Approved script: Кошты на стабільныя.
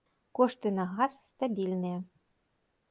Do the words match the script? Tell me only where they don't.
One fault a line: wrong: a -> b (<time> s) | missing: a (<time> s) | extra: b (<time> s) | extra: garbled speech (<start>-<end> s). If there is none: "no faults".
extra: газ (0.9 s)